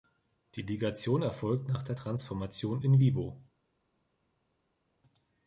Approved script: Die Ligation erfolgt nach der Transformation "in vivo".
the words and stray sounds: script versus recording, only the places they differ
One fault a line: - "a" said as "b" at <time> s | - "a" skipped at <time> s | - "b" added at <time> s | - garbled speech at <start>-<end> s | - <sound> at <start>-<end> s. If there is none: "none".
none